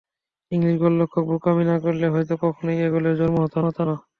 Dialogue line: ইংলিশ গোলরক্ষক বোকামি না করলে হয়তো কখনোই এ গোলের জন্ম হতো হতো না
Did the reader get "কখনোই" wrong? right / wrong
right